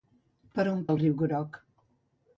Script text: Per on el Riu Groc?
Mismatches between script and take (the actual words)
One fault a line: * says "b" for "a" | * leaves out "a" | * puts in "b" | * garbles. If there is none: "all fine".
all fine